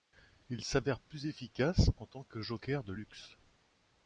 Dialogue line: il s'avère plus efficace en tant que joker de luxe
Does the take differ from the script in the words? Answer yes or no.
no